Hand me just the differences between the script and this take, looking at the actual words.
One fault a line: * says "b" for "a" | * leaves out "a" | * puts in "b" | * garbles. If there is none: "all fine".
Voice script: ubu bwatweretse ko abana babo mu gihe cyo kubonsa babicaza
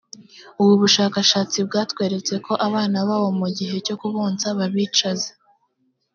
* puts in "bushakashatsi"